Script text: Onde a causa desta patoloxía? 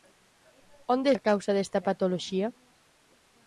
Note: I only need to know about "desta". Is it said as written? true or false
true